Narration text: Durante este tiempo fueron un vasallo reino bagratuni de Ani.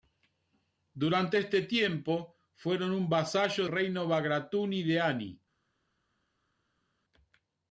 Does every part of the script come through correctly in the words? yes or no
yes